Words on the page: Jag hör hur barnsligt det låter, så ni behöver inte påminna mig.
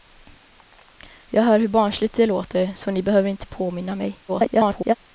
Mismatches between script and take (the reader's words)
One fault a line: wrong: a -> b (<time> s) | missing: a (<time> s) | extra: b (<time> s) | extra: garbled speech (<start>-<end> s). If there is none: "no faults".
extra: garbled speech (4.3-4.9 s)